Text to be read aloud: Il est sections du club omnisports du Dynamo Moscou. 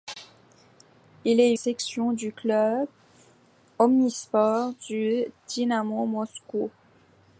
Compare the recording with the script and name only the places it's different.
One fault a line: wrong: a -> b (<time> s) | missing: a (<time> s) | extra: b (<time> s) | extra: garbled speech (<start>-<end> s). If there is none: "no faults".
no faults